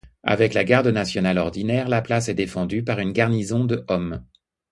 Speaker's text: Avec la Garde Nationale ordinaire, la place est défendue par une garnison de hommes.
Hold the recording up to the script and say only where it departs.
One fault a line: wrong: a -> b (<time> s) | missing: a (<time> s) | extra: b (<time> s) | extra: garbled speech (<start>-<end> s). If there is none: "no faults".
no faults